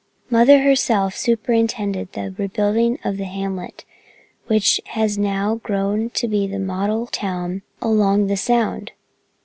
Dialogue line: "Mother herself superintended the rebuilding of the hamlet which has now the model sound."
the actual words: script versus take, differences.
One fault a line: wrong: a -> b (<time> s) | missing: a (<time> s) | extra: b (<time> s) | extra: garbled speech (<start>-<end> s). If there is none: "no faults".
extra: grown to be (5.6 s)
extra: town along the (7.1 s)